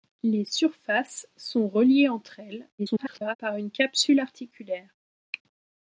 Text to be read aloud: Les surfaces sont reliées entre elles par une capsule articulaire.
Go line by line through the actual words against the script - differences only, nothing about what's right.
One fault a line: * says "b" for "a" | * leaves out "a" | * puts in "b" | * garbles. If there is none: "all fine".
* garbles